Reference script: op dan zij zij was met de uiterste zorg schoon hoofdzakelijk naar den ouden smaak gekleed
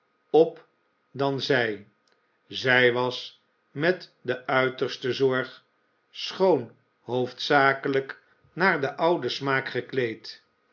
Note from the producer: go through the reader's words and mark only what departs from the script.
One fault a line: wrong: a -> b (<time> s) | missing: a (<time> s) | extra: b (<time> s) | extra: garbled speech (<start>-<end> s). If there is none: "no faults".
no faults